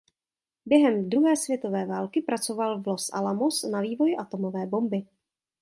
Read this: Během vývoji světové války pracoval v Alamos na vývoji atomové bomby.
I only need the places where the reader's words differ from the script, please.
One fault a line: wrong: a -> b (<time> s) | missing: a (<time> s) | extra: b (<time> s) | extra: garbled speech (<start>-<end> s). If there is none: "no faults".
wrong: vývoji -> druhé (1.1 s)
extra: Los (2.9 s)